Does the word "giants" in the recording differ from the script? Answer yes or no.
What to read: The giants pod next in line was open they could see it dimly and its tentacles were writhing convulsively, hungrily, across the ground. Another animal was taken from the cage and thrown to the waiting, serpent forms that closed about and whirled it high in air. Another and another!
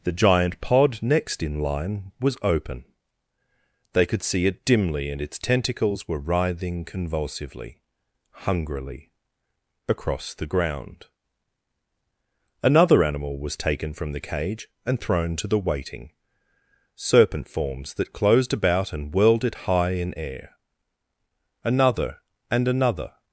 yes